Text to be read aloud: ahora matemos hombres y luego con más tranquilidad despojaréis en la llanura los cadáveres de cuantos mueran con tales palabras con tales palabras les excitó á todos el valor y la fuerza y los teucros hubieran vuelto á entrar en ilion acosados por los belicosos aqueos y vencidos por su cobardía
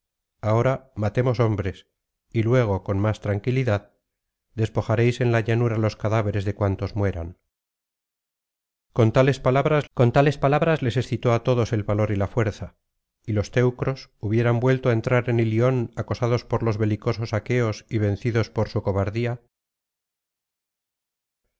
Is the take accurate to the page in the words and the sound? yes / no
yes